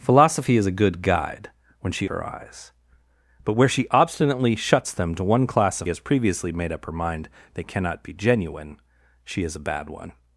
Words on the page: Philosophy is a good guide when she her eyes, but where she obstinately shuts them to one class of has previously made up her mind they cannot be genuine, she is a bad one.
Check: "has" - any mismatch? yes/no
no